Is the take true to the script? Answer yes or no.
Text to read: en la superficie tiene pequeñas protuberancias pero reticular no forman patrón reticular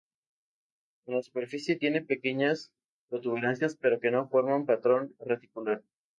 no